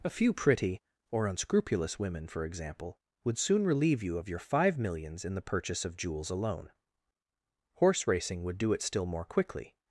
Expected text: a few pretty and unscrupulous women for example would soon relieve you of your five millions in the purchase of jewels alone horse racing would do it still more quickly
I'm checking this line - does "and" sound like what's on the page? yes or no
no